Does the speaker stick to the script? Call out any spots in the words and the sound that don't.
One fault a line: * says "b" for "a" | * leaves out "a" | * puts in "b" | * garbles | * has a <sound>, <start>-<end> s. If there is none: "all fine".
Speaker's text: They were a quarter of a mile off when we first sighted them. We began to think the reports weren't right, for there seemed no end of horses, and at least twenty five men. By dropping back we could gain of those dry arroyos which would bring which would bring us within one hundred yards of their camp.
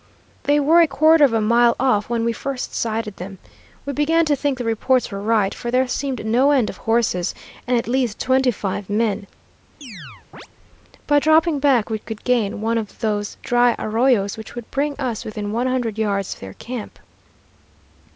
* says "were" for "weren't"
* has a chirp, 9.8-10.5 s
* puts in "one"
* leaves out "which would bring"